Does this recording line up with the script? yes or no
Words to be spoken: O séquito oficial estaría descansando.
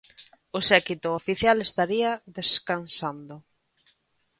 yes